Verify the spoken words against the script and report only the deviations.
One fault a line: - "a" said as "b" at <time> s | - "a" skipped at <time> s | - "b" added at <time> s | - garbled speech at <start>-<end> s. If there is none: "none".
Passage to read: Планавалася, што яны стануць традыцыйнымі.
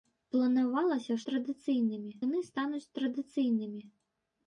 - "што" said as "традыцыйнымі" at 1.3 s